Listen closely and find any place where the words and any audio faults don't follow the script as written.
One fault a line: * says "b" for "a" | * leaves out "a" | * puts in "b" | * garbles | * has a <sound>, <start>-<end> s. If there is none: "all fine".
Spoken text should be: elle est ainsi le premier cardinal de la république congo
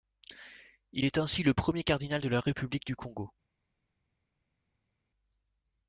* says "il" for "elle"
* puts in "du"